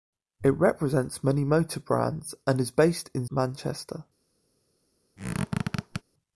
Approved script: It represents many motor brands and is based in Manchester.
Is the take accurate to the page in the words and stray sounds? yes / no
no